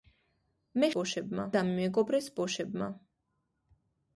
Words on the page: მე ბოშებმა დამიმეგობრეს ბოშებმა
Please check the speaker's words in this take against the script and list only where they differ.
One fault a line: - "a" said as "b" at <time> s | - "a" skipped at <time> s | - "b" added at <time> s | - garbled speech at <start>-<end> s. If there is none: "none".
none